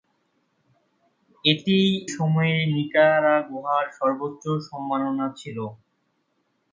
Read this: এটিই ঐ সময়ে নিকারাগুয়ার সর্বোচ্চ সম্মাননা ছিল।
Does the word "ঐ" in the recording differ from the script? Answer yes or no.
yes